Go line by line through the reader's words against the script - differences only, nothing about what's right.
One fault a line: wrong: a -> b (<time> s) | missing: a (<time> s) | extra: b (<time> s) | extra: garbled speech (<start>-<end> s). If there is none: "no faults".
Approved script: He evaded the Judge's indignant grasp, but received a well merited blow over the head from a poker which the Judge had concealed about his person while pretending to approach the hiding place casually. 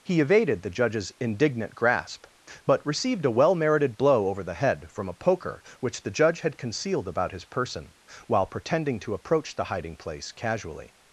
no faults